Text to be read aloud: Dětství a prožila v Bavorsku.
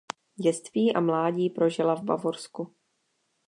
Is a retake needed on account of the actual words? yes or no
yes